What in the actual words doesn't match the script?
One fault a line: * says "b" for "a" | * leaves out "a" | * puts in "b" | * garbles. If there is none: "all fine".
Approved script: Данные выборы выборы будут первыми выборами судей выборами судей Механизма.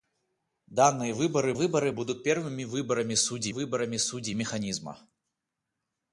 all fine